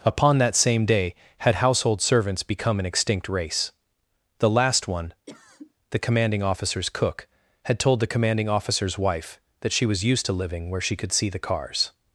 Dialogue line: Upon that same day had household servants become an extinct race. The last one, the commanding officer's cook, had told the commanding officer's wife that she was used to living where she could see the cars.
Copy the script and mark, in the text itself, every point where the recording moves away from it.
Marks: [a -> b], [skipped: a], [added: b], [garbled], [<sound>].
Upon that same day had household servants become an extinct race. The last one, [cough] the commanding officer's cook, had told the commanding officer's wife that she was used to living where she could see the cars.